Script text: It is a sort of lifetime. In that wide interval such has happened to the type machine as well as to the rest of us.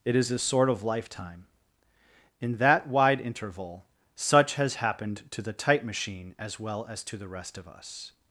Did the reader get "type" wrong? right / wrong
right